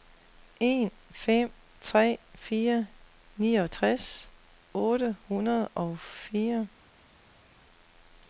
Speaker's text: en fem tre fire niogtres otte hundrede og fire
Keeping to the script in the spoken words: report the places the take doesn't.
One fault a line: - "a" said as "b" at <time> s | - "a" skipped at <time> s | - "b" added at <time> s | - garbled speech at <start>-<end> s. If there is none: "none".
none